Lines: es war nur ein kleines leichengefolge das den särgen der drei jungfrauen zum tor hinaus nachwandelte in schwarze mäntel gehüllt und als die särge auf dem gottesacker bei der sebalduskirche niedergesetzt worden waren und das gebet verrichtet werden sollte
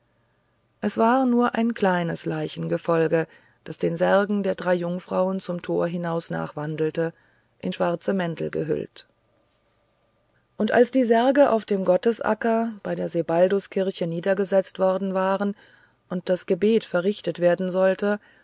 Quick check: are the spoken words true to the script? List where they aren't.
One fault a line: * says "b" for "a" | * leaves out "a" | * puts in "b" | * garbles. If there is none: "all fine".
all fine